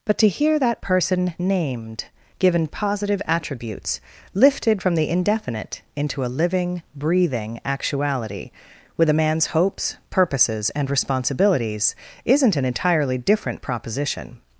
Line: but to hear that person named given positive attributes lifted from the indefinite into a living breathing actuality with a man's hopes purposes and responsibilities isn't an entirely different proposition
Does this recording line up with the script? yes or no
yes